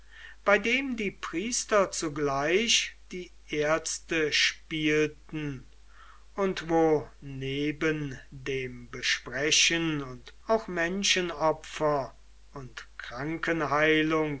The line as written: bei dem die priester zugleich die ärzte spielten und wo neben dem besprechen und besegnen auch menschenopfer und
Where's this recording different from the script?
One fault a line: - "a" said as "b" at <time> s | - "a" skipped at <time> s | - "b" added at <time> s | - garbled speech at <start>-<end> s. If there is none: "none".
- "besegnen" skipped at 10.4 s